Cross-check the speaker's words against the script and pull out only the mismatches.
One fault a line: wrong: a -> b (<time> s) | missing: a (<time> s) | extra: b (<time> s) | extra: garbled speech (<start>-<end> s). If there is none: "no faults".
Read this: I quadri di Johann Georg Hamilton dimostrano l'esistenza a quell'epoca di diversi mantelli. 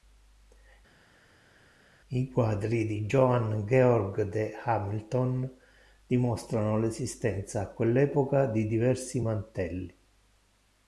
extra: de (4.2 s)